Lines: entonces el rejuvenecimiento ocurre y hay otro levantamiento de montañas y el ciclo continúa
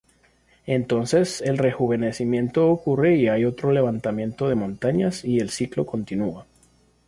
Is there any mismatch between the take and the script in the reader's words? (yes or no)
no